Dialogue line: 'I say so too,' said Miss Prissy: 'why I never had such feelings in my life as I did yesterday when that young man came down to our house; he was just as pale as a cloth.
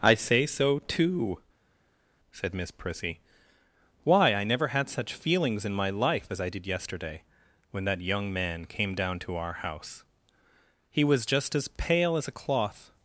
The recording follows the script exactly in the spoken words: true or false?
true